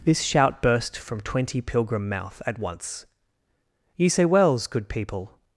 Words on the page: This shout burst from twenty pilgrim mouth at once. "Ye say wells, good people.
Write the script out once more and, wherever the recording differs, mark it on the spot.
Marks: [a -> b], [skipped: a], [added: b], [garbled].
This shout burst from twenty pilgrim mouth at once. "Ye say wells, good people.